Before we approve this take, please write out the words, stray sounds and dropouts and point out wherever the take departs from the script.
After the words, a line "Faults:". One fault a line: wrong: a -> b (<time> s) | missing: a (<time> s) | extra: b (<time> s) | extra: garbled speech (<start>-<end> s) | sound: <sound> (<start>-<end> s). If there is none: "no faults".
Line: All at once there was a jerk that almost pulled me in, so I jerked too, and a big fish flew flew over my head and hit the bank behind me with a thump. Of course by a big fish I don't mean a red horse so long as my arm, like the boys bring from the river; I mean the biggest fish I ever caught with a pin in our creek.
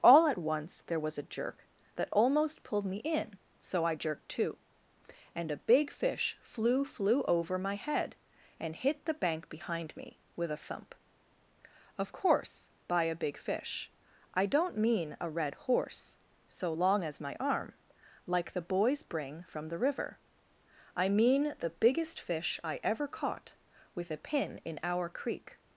All at once there was a jerk that almost pulled me in, so I jerked too, and a big fish flew flew over my head and hit the bank behind me with a thump. Of course by a big fish I don't mean a red horse so long as my arm, like the boys bring from the river; I mean the biggest fish I ever caught with a pin in our creek.
Faults:
no faults